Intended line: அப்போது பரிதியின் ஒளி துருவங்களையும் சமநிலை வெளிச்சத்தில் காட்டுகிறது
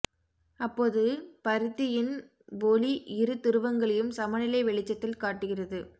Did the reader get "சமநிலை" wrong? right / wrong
right